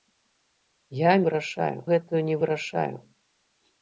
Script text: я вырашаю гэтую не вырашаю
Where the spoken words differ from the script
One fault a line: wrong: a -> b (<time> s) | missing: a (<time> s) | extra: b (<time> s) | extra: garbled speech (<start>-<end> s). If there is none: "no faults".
no faults